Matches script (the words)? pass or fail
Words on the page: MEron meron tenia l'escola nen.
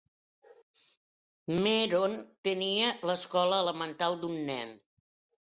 fail